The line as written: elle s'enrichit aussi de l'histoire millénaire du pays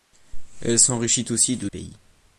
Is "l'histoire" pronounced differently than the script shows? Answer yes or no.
yes